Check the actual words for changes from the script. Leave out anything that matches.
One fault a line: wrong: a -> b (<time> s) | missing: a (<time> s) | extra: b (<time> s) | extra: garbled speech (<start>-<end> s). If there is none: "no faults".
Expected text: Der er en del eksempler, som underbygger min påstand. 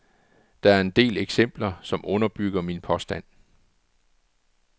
no faults